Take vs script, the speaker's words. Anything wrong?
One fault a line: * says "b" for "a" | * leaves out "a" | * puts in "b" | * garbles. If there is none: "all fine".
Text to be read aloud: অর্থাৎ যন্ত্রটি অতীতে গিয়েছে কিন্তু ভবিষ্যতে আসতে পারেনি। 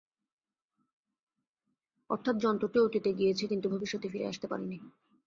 * puts in "ফিরে"